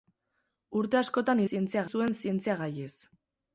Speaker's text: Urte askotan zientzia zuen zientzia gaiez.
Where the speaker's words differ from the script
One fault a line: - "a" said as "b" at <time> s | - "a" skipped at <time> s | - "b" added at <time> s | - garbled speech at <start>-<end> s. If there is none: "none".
none